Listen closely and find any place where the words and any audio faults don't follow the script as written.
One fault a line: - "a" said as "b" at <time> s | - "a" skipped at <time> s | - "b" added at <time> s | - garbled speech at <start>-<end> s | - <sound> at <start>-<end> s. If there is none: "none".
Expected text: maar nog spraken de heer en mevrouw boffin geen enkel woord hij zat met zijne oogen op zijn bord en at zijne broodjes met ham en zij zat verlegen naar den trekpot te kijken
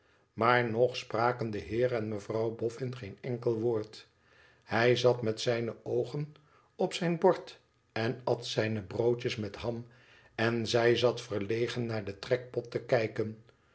none